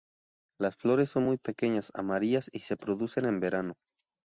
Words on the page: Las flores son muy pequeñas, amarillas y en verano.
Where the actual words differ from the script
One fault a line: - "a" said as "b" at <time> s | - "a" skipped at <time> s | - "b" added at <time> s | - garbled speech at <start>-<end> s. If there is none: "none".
- "se producen" added at 2.6 s